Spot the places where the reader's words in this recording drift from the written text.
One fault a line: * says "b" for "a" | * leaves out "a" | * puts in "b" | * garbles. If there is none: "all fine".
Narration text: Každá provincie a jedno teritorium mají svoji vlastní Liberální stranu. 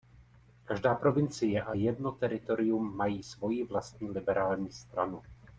all fine